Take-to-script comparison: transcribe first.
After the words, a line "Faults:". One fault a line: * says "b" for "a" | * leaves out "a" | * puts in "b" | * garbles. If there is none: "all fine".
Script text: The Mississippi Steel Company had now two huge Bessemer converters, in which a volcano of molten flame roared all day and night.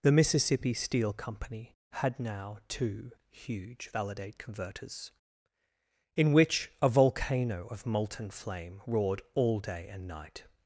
The Mississippi Steel Company had now two huge Validate converters, in which a volcano of molten flame roared all day and night.
Faults:
* says "Validate" for "Bessemer"